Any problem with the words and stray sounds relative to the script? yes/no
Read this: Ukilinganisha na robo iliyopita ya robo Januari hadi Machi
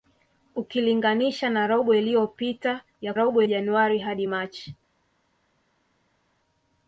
no